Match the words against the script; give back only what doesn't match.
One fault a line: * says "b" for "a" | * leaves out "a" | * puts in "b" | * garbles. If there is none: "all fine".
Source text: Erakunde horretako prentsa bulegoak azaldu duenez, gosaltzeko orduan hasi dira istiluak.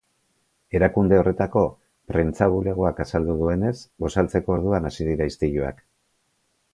all fine